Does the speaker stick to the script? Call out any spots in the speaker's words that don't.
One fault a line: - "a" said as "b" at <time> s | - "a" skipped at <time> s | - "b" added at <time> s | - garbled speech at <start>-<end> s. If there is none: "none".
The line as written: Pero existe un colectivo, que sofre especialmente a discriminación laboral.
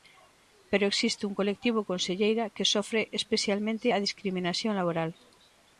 - "conselleira" added at 1.9 s